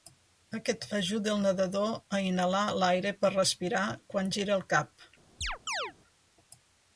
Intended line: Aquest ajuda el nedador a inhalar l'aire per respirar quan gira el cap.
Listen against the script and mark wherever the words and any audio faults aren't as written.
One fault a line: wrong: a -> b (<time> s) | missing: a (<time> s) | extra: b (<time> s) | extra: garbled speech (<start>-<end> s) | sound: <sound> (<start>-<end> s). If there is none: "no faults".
sound: chirp (5.4-5.9 s)